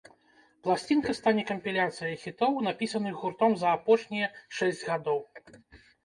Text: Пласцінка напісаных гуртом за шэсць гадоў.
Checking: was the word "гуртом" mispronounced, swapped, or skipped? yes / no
no